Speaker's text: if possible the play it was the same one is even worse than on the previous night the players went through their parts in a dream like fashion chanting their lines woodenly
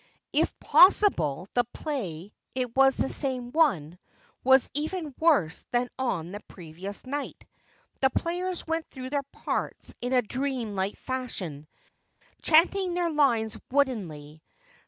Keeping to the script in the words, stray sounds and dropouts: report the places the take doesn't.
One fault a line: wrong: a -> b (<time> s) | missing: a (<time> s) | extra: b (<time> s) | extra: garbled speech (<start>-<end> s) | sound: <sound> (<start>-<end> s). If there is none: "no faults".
wrong: is -> was (4.4 s)